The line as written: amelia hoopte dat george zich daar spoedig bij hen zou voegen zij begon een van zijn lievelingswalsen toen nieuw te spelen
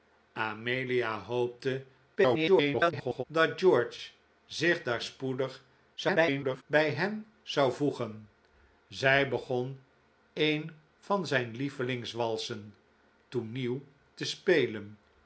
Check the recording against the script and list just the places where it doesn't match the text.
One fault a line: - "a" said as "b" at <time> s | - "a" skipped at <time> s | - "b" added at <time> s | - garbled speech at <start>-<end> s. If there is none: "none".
- garbled speech at 2.2-3.2 s
- garbled speech at 6.0-6.6 s